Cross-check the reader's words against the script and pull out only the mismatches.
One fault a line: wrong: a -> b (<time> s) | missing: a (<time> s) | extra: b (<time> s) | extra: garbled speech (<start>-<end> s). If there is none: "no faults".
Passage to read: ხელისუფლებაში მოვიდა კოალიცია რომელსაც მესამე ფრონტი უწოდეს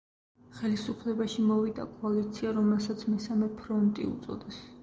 no faults